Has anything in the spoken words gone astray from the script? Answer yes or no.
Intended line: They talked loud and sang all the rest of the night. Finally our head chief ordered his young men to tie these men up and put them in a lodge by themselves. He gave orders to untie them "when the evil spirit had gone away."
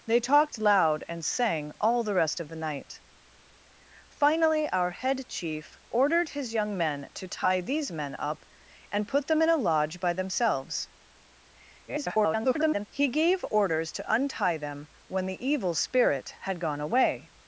yes